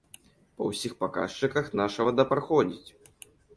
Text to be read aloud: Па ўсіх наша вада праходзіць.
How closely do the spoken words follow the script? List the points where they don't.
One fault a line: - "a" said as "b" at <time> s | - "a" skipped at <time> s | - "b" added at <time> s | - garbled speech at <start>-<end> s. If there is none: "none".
- "паказчыках" added at 1.0 s